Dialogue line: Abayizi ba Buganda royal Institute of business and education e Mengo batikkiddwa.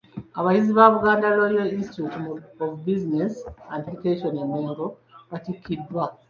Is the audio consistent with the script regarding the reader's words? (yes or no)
yes